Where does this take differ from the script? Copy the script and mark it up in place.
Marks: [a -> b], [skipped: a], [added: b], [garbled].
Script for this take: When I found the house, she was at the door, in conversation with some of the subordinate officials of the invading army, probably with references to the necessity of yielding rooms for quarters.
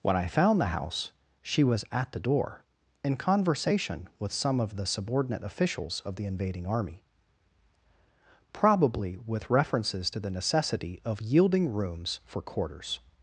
When I found the house, she was at the door, in conversation with some of the subordinate officials of the invading army, probably with references to the necessity of yielding rooms for quarters.